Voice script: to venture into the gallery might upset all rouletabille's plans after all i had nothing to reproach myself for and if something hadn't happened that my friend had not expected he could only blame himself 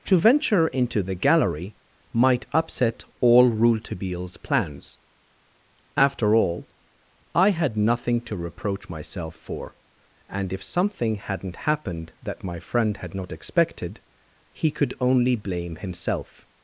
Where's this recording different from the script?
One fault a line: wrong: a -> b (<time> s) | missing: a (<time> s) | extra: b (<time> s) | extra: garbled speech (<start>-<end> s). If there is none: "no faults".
no faults